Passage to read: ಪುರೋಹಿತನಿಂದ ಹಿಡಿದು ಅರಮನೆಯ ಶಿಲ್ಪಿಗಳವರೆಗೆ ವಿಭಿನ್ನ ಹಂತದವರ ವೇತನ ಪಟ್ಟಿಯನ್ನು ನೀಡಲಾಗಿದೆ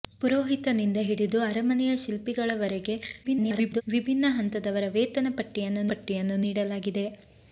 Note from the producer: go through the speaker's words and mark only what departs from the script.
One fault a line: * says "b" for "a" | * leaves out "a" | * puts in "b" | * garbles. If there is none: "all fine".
* garbles
* puts in "ಪಟ್ಟಿಯನ್ನು"